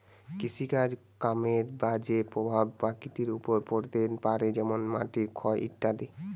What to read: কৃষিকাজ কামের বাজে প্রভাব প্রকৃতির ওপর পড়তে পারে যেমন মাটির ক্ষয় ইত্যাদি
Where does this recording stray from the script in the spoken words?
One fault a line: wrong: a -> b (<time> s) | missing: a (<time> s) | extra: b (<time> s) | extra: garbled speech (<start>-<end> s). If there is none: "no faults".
no faults